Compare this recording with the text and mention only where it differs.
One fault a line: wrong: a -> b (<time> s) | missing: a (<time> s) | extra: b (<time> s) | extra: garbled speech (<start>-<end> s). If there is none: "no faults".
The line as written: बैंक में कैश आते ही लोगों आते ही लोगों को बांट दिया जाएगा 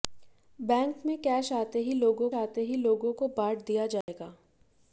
no faults